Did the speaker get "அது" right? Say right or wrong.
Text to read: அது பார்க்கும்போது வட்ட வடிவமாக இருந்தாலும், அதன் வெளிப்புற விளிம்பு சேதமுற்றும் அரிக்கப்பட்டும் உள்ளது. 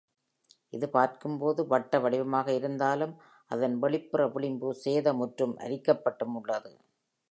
wrong